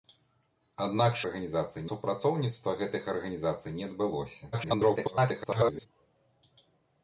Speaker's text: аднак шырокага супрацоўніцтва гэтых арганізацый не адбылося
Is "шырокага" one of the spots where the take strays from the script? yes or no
yes